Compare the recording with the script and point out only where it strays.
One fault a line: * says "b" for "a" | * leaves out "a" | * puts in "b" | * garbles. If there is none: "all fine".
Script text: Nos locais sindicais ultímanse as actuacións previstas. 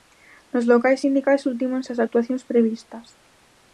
all fine